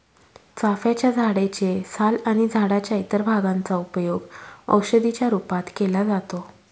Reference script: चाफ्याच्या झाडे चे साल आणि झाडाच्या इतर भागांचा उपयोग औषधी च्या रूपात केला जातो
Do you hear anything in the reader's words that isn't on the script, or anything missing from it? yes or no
no